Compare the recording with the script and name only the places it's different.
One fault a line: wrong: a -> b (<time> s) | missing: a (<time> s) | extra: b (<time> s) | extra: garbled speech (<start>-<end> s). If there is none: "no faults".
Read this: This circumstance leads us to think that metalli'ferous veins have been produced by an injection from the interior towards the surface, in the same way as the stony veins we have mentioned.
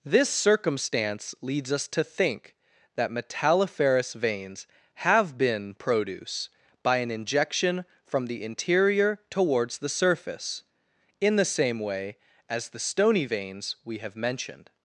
wrong: produced -> produce (5.8 s)